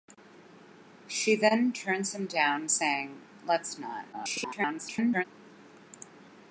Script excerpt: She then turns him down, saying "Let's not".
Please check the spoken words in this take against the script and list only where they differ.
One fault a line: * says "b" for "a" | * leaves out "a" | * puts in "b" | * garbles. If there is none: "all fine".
* garbles